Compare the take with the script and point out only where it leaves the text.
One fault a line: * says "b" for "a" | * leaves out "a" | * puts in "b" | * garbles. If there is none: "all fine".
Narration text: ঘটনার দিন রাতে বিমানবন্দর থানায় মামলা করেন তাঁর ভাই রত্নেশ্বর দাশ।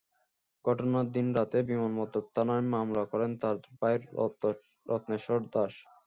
all fine